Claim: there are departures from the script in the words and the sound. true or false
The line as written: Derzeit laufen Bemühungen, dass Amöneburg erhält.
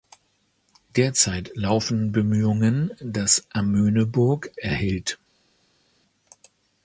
false